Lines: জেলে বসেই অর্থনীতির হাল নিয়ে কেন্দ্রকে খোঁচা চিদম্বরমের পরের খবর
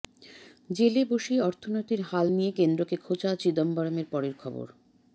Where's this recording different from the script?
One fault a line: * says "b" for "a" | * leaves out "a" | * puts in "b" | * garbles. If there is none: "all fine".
all fine